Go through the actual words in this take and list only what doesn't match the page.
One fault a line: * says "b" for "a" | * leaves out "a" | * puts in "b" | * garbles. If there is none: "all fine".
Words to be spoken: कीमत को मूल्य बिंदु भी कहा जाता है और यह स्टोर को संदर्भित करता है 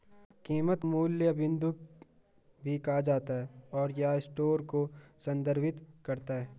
* leaves out "को"